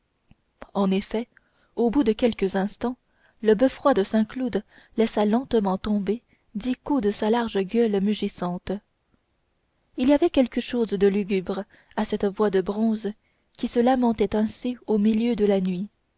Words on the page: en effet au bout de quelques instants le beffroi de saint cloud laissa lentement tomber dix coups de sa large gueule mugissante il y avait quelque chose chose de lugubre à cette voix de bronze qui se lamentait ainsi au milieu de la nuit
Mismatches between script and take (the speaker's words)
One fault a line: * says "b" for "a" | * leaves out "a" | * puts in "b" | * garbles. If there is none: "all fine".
* leaves out "chose"